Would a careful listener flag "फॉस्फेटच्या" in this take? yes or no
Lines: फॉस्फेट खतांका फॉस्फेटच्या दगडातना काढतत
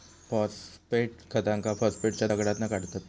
no